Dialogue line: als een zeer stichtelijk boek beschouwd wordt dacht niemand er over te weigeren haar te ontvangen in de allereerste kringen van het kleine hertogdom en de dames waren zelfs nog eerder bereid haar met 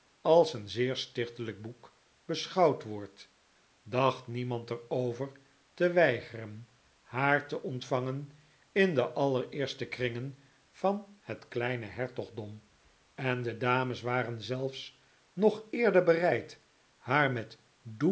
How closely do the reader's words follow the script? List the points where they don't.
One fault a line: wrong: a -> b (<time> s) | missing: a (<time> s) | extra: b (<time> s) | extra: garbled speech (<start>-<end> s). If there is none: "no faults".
no faults